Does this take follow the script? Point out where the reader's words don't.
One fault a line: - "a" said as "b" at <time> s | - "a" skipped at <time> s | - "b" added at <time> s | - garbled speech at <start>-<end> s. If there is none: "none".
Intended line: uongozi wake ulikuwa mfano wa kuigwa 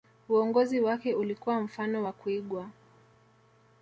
none